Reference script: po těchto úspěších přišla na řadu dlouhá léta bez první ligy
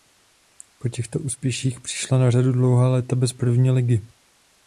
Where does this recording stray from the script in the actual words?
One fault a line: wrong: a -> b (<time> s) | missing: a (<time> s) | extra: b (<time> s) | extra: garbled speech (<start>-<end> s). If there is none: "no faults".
no faults